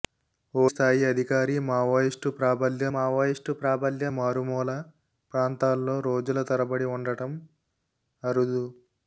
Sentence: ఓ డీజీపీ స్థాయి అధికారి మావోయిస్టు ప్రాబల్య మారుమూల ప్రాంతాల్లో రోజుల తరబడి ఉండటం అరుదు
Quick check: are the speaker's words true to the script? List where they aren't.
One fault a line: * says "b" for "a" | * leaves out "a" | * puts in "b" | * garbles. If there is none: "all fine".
* leaves out "డీజీపీ"
* puts in "మావోయిస్టు ప్రాబల్య"